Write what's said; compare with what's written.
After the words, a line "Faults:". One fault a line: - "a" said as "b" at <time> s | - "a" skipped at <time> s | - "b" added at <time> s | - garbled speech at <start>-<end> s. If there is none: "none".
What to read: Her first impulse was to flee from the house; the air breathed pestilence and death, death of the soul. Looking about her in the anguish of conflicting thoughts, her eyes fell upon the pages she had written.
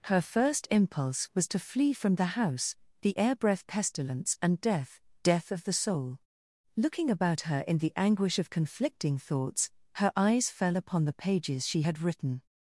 Her first impulse was to flee from the house; the air breath pestilence and death, death of the soul. Looking about her in the anguish of conflicting thoughts, her eyes fell upon the pages she had written.
Faults:
- "breathed" said as "breath" at 3.4 s